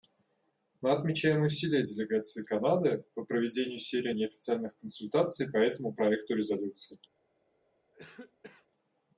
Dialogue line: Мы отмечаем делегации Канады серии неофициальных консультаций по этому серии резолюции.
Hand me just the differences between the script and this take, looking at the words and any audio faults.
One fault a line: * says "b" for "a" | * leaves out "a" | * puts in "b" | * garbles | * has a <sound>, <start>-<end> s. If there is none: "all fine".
* puts in "усилия"
* puts in "по проведению"
* says "проекту" for "серии"
* has a cough, 7.9-8.7 s